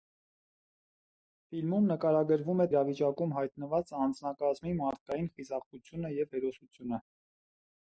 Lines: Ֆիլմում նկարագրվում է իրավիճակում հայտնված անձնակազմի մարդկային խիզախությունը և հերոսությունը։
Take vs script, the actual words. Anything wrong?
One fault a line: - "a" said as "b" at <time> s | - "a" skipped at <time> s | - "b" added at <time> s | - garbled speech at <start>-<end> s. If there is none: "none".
none